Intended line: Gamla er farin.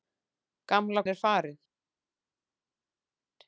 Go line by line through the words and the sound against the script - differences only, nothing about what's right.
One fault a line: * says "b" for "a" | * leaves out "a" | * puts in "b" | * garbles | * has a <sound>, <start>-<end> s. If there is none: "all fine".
all fine